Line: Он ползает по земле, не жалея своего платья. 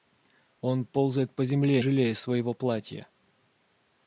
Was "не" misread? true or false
true